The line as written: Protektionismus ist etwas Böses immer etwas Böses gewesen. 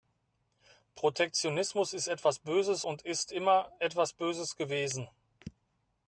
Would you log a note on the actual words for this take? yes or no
yes